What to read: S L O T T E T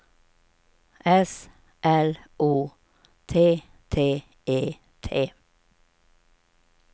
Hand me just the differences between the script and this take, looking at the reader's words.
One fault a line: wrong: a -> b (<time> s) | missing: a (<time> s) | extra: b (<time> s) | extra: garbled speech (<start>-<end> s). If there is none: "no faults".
no faults